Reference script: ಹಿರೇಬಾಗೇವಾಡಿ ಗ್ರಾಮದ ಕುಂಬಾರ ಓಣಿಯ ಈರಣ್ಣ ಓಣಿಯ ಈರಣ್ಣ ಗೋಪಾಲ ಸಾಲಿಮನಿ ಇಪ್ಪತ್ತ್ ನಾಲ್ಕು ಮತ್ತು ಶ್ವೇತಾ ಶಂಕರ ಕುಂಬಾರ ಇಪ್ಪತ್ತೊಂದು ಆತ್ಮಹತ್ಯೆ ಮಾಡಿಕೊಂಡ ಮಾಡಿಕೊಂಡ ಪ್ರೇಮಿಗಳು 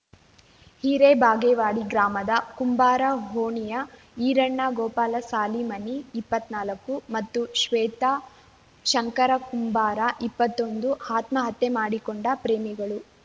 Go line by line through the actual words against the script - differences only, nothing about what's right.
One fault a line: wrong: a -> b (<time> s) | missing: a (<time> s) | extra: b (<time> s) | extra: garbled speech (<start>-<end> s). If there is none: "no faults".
missing: ಓಣಿಯ ಈರಣ್ಣ (4.6 s)
missing: ಮಾಡಿಕೊಂಡ (12.3 s)